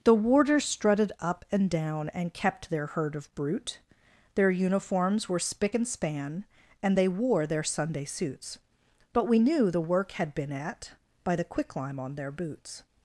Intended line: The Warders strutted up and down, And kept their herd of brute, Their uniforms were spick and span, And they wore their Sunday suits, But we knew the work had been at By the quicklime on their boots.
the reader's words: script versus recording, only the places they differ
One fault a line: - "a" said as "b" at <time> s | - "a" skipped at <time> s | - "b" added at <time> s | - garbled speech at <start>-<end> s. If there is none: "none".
none